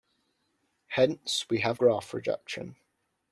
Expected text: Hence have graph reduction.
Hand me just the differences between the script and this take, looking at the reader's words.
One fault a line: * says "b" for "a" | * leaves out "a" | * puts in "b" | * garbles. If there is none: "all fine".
* puts in "we"